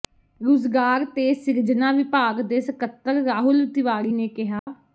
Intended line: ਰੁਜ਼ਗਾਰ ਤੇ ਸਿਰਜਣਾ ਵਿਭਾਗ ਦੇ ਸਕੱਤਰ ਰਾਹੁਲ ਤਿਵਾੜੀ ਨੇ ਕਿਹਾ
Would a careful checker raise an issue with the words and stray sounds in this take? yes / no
yes